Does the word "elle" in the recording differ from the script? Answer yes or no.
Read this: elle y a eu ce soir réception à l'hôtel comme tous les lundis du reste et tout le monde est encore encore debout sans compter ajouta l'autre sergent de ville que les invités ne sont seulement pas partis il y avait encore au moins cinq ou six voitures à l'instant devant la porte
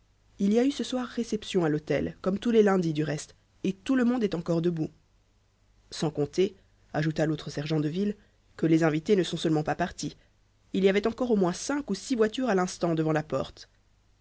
yes